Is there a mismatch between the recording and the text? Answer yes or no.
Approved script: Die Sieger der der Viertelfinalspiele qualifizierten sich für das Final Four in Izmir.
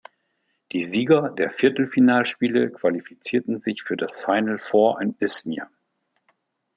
yes